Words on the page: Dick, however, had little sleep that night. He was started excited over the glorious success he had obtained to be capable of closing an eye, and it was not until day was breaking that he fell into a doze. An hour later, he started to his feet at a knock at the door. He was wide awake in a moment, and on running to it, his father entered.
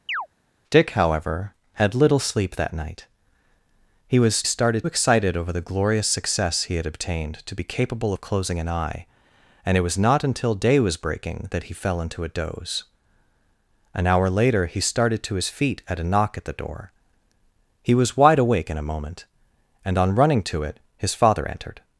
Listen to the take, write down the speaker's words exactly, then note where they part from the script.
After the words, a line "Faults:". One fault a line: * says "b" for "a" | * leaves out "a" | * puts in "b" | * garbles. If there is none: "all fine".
Dick, however, had little sleep that night. He was started excited over the glorious success he had obtained to be capable of closing an eye, and it was not until day was breaking that he fell into a doze. An hour later, he started to his feet at a knock at the door. He was wide awake in a moment, and on running to it, his father entered.
Faults:
all fine